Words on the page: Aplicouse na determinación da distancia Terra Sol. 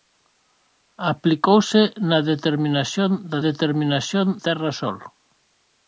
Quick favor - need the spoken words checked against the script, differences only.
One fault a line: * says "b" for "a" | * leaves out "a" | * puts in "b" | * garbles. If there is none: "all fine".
* says "determinación" for "distancia"